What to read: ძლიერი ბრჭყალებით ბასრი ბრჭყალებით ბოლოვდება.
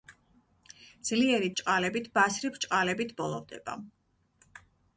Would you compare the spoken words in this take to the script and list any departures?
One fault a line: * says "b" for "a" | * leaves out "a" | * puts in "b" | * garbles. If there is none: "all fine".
all fine